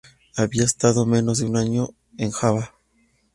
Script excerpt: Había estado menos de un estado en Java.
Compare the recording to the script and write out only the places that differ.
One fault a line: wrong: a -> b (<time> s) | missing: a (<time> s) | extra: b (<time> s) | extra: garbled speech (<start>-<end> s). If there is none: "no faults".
wrong: estado -> año (1.6 s)